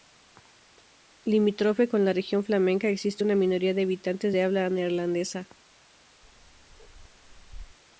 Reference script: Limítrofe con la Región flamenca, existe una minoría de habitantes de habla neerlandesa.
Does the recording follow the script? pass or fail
pass